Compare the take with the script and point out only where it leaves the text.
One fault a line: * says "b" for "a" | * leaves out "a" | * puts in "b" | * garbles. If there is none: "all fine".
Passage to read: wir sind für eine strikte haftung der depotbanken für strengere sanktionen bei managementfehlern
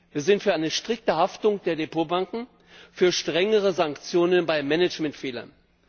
all fine